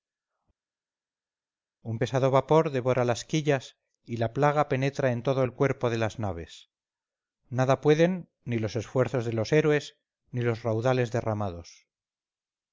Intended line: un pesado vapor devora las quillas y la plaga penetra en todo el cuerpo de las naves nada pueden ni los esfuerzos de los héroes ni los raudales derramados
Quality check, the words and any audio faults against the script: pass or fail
pass